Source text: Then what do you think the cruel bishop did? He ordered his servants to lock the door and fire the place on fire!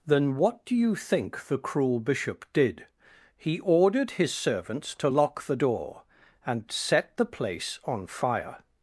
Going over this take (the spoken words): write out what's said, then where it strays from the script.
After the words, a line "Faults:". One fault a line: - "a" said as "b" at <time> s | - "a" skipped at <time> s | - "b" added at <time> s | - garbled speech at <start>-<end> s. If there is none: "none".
Then what do you think the cruel bishop did? He ordered his servants to lock the door and set the place on fire!
Faults:
- "fire" said as "set" at 6.7 s